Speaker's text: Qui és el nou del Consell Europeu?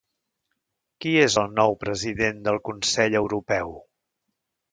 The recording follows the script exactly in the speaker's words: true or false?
false